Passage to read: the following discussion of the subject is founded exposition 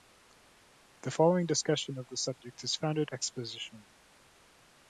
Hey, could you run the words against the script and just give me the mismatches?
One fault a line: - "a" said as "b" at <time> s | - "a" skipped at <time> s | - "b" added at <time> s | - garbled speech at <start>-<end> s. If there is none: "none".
none